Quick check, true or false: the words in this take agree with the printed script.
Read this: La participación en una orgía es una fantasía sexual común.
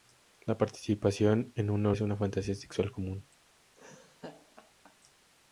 false